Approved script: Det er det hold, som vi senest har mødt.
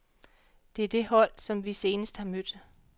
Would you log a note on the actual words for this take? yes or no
no